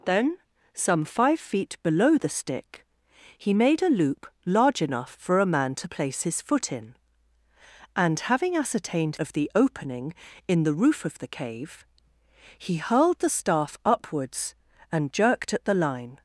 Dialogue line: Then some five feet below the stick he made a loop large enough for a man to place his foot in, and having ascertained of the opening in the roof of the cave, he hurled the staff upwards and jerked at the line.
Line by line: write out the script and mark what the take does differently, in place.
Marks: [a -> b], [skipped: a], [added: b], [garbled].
Then some five feet below the stick he made a loop large enough for a man to place his foot in, and having ascertained of the opening in the roof of the cave, he hurled the staff upwards and jerked at the line.